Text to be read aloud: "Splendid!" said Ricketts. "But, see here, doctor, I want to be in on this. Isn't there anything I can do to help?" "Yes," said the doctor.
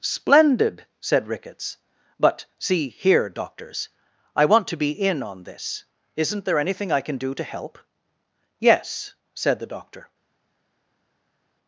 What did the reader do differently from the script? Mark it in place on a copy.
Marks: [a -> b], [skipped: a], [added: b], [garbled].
"Splendid!" said Ricketts. "But, see here, [doctor, -> doctors] I want to be in on this. Isn't there anything I can do to help?" "Yes," said the doctor.